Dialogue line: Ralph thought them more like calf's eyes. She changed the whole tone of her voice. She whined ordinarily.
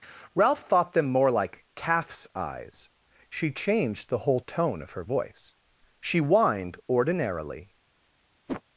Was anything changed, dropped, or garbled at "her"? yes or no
no